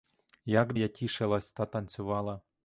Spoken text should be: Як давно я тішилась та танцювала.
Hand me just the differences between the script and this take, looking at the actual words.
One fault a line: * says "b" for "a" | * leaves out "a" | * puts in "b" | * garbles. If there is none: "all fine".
* leaves out "давно"